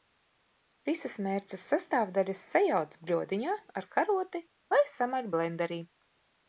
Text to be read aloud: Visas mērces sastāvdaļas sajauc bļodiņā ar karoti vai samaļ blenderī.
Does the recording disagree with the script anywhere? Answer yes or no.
no